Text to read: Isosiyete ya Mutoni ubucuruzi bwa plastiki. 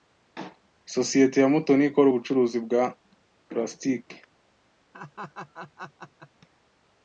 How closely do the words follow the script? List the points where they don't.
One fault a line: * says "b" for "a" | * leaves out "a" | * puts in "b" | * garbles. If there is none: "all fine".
* puts in "ikora"